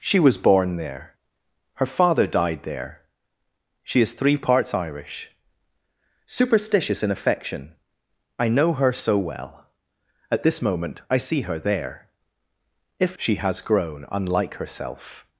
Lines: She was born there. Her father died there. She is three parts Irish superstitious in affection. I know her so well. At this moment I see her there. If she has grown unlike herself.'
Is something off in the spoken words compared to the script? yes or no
no